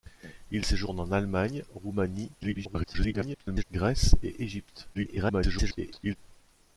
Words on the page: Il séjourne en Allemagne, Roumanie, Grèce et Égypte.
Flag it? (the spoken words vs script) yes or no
yes